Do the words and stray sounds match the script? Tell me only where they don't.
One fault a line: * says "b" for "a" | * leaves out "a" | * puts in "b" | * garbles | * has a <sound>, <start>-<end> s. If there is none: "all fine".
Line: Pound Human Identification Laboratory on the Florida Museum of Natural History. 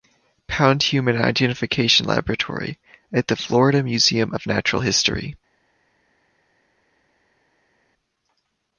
* says "at" for "on"